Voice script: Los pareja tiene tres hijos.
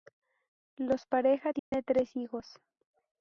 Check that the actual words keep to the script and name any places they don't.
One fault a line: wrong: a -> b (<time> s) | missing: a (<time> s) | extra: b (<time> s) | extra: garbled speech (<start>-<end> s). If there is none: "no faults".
no faults